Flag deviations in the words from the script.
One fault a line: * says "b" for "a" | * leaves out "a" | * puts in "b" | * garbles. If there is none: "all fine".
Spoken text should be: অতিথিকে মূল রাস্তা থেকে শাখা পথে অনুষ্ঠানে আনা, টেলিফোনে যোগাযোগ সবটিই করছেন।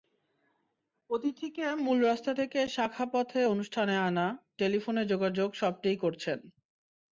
all fine